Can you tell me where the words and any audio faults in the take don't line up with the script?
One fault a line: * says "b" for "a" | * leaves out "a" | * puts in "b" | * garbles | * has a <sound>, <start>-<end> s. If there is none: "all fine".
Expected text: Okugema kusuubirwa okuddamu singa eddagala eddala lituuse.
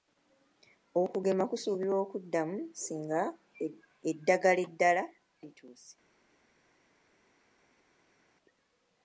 all fine